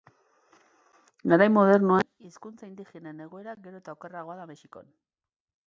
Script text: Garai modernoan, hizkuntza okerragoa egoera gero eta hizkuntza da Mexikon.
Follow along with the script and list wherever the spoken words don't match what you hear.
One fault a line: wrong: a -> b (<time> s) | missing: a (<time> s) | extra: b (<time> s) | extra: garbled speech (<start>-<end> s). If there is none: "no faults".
wrong: okerragoa -> indigenen (2.7 s)
wrong: hizkuntza -> okerragoa (4.0 s)